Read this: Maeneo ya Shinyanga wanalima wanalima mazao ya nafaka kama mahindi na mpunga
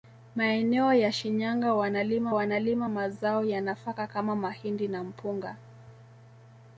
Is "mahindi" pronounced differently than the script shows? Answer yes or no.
no